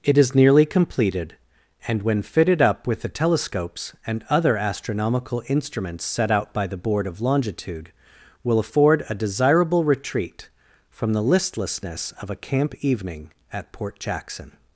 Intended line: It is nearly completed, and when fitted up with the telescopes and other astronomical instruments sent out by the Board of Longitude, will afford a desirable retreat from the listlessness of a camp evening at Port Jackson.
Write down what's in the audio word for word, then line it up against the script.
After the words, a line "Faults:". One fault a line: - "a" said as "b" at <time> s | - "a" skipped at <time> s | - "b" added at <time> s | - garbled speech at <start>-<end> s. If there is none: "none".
It is nearly completed, and when fitted up with the telescopes and other astronomical instruments set out by the Board of Longitude, will afford a desirable retreat from the listlessness of a camp evening at Port Jackson.
Faults:
- "sent" said as "set" at 6.0 s